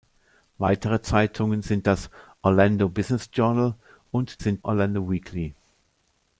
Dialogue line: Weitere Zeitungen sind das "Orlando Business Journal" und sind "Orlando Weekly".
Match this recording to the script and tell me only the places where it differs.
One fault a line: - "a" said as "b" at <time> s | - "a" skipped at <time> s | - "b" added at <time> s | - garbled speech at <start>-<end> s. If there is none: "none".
none